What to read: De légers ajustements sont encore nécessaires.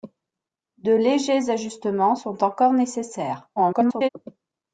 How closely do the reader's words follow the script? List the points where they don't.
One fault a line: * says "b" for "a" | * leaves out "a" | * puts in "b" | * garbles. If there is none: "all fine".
* garbles